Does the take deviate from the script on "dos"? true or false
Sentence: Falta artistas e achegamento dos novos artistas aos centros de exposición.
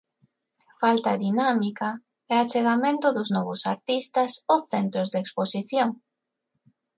false